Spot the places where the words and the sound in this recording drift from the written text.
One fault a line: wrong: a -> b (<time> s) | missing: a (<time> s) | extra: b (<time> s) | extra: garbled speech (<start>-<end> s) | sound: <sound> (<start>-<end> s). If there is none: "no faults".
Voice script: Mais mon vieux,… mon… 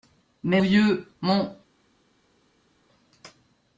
missing: mon (0.6 s)